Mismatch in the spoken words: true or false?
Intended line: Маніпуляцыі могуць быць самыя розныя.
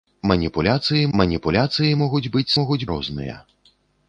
true